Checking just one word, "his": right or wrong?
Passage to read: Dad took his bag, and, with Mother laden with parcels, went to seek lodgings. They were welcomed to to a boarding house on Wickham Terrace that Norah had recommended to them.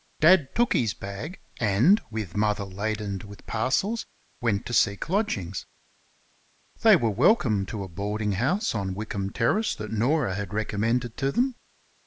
right